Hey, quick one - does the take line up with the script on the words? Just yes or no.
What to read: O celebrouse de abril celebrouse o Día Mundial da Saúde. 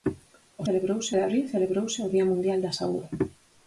yes